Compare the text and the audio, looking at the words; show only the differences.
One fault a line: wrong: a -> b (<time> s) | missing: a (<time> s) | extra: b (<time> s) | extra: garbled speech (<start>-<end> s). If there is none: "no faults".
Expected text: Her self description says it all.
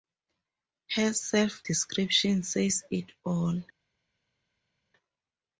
no faults